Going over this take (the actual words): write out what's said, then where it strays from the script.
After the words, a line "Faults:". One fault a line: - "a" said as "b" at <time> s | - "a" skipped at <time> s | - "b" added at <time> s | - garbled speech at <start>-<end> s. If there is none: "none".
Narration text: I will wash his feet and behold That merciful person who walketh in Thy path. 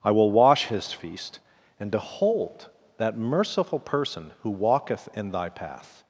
I will wash his feast and behold That merciful person who walketh in Thy path.
Faults:
- "feet" said as "feast" at 0.9 s